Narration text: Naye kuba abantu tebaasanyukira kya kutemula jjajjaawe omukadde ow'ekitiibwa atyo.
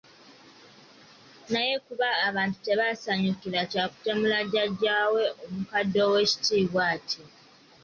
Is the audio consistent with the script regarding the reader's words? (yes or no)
yes